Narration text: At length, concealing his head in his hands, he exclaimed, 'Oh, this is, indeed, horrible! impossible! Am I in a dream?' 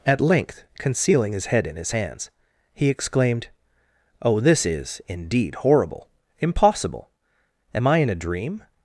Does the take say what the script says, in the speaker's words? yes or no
yes